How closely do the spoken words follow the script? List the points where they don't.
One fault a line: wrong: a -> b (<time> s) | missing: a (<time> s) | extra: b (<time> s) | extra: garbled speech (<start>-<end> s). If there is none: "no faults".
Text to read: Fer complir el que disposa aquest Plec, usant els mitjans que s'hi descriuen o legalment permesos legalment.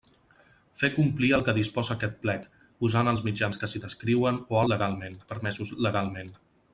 no faults